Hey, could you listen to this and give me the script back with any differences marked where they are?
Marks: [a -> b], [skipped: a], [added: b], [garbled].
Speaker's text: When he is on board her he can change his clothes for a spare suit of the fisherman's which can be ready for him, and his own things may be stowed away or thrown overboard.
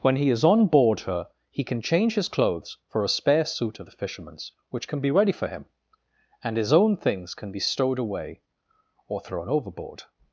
When he is on board her he can change his clothes for a spare suit of the fisherman's which can be ready for him, and his own things [may -> can] be stowed away or thrown overboard.